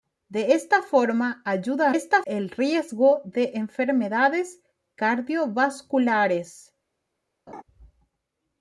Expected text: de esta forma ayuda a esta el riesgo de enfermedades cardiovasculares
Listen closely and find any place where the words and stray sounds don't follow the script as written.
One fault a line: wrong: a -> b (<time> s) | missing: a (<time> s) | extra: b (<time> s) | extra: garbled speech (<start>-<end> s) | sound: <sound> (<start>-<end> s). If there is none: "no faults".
sound: laugh (7.5-7.6 s)